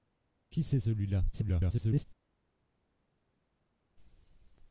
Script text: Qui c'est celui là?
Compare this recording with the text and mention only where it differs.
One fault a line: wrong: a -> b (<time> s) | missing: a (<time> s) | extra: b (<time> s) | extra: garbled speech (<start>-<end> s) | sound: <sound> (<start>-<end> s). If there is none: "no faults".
extra: garbled speech (1.3-2.0 s)